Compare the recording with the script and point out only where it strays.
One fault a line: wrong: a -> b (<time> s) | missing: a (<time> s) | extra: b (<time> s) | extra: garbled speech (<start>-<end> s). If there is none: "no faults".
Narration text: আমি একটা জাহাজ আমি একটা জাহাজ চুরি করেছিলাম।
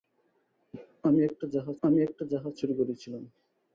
no faults